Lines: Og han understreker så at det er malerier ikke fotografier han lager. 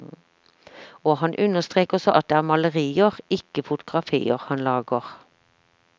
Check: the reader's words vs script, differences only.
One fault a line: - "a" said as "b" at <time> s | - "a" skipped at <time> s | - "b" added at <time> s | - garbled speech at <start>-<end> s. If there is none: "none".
none